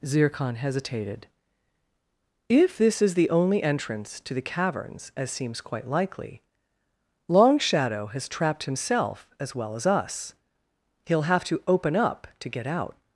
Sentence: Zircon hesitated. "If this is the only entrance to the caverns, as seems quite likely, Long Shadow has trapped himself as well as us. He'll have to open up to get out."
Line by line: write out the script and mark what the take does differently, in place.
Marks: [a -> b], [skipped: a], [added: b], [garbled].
Zircon hesitated. "If this is the only entrance to the caverns, as seems quite likely, Long Shadow has trapped himself as well as us. He'll have to open up to get out."